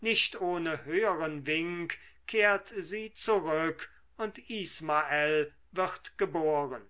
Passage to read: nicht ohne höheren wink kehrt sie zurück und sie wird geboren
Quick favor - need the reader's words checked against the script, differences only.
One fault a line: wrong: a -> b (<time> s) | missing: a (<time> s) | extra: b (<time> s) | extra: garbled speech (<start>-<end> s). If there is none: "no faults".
wrong: sie -> ismael (4.5 s)